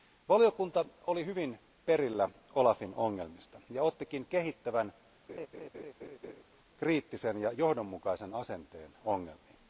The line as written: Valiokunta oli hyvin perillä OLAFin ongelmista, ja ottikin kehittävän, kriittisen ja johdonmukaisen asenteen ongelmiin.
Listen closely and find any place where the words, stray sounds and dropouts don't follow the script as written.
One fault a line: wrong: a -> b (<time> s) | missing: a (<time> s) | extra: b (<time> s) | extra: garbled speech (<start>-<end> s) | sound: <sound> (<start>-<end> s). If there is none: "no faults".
sound: laugh (5.3-6.4 s)